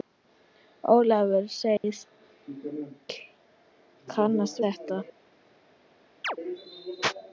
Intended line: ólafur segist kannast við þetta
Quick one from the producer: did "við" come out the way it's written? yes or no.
no